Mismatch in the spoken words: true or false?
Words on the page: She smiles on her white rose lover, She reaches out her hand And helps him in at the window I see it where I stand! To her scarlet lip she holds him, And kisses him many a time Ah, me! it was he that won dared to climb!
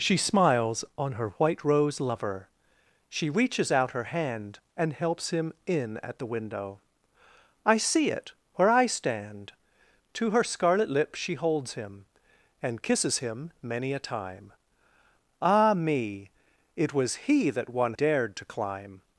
false